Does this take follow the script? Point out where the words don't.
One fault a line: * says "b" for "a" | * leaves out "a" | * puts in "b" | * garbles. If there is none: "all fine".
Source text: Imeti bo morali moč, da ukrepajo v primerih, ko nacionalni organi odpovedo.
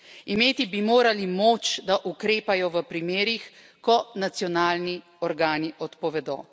* says "bi" for "bo"